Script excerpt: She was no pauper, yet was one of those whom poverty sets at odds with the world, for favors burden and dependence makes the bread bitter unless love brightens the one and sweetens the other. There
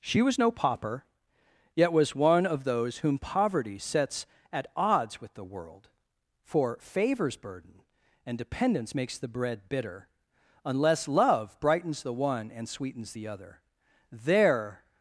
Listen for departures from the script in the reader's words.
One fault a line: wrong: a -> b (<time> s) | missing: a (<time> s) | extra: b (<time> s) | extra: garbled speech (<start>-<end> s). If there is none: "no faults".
no faults